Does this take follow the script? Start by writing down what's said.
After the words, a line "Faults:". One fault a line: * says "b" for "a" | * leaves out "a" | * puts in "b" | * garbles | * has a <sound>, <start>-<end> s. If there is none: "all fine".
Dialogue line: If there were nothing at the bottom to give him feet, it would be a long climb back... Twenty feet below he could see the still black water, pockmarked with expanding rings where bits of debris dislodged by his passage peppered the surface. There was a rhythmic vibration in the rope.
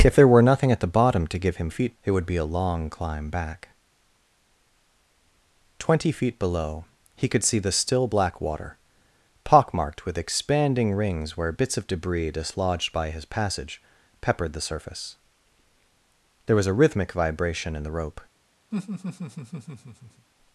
If there were nothing at the bottom to give him feet, it would be a long climb back... Twenty feet below he could see the still black water, pockmarked with expanding rings where bits of debris dislodged by his passage peppered the surface. There was a rhythmic vibration in the rope.
Faults:
* has a laugh, 18.7-20.3 s